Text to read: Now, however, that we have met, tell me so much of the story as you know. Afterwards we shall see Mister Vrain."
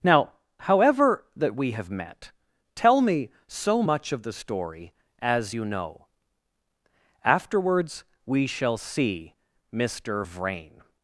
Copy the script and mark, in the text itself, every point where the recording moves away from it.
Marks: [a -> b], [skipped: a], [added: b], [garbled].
Now, however, that we have met, tell me so much of the story as you know. Afterwards we shall see Mister Vrain."